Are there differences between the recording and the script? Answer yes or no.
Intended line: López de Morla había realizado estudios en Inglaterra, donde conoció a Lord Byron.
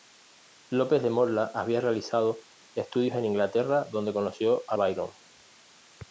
yes